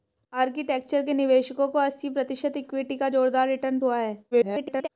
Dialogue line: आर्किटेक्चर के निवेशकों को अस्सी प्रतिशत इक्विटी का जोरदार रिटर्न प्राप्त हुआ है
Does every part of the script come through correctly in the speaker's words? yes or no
no